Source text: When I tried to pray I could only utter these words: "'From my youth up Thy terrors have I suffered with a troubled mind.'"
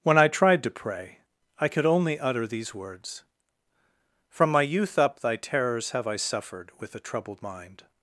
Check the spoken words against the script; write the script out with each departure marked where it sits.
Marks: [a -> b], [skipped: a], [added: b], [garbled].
When I tried to pray I could only utter these words: "'From my youth up Thy terrors have I suffered with a troubled mind.'"